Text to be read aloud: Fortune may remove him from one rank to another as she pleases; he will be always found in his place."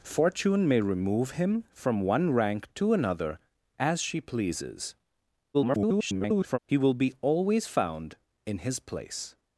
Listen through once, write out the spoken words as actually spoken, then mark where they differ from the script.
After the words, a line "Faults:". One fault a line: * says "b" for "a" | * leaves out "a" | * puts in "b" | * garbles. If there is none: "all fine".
Fortune may remove him from one rank to another as she pleases; [garbled] he will be always found in his place."
Faults:
* garbles